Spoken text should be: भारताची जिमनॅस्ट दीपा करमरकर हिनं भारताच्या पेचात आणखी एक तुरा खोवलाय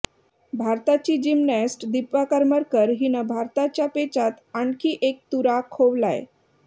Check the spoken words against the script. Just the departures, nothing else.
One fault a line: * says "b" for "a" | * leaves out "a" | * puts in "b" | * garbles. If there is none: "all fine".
all fine